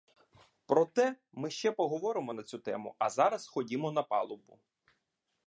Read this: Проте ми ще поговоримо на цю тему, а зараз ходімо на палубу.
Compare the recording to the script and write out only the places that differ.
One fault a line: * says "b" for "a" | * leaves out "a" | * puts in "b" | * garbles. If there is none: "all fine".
all fine